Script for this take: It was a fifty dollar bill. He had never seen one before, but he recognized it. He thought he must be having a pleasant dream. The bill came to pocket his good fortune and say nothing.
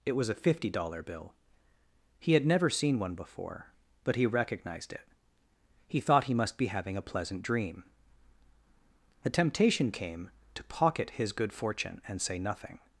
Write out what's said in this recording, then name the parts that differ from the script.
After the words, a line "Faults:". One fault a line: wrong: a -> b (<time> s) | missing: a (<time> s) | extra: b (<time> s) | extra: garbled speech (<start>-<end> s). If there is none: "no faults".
It was a fifty dollar bill. He had never seen one before, but he recognized it. He thought he must be having a pleasant dream. The temptation came to pocket his good fortune and say nothing.
Faults:
wrong: bill -> temptation (9.3 s)